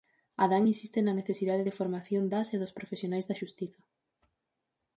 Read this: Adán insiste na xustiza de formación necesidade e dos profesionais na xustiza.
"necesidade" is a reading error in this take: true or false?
true